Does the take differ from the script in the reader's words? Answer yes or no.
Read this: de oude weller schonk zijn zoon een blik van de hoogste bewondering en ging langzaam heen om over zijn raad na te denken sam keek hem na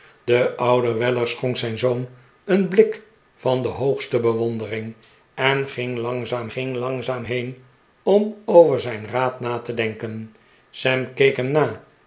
yes